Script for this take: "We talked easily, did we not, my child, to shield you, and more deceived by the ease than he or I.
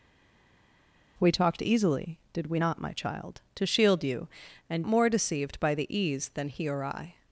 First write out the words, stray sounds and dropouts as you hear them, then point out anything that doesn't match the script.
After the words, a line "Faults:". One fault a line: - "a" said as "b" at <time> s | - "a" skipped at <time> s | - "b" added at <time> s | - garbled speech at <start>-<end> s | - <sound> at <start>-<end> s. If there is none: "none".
"We talked easily, did we not, my child, to shield you, and more deceived by the ease than he or I.
Faults:
none